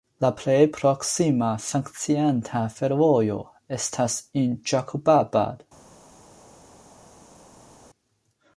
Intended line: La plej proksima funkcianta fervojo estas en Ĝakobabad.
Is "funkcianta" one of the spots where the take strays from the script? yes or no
no